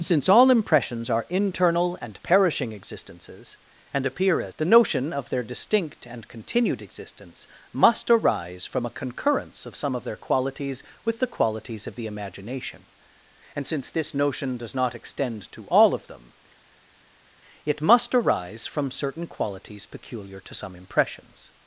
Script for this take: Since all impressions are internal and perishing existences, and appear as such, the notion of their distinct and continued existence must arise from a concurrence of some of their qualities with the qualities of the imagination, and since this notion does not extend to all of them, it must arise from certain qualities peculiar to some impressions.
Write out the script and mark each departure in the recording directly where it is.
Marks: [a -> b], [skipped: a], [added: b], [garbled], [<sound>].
Since all impressions are internal and perishing existences, and appear as [skipped: such,] the notion of their distinct and continued existence must arise from a concurrence of some of their qualities with the qualities of the imagination, and since this notion does not extend to all of them, it must arise from certain qualities peculiar to some impressions.